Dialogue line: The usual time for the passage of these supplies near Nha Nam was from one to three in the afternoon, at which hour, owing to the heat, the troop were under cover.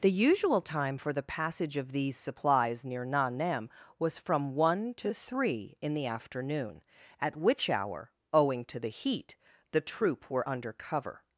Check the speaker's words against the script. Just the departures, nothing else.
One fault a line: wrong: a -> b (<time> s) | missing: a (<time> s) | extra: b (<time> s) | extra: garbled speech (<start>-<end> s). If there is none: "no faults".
no faults